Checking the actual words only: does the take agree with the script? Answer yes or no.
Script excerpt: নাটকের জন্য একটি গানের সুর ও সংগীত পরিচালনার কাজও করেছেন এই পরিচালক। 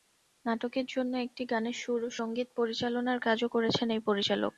yes